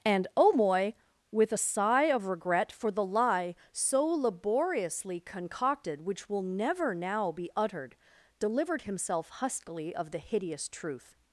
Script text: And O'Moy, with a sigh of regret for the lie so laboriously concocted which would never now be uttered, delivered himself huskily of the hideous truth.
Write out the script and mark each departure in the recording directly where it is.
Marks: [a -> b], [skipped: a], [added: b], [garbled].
And O'Moy, with a sigh of regret for the lie so laboriously concocted which [would -> will] never now be uttered, delivered himself huskily of the hideous truth.